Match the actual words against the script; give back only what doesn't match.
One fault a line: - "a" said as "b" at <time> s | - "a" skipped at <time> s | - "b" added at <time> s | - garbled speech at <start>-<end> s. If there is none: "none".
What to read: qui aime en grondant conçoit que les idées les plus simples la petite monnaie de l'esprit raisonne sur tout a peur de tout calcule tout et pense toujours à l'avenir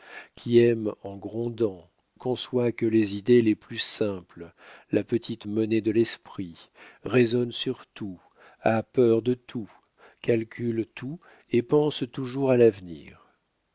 none